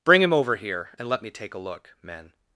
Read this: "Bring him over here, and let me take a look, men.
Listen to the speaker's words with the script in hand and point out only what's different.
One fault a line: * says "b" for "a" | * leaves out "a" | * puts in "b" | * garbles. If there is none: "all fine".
all fine